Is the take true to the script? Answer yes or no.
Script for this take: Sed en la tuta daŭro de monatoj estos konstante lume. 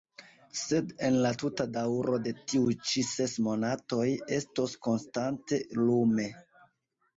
no